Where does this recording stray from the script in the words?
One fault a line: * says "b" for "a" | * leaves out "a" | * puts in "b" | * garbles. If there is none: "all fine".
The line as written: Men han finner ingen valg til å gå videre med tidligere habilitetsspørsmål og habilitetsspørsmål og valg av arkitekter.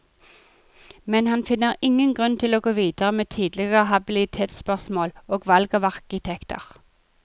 * says "grunn" for "valg"
* leaves out "habilitetsspørsmål og"